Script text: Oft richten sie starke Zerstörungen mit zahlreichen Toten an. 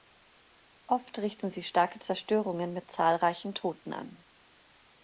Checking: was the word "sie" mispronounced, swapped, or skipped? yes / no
no